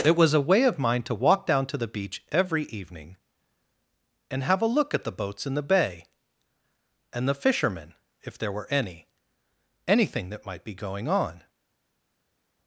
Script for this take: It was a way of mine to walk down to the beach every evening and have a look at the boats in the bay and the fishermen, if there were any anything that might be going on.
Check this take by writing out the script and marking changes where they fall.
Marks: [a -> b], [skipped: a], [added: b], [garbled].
It was a way of mine to walk down to the beach every evening and have a look at the boats in the bay and the fishermen, if there were any anything that might be going on.